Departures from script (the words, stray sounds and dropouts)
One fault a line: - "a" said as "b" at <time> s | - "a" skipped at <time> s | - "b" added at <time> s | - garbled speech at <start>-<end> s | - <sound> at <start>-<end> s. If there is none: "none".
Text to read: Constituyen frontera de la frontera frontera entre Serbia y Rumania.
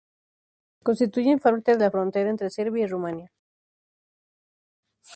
- "frontera" said as "parte" at 1.4 s
- "frontera" skipped at 2.3 s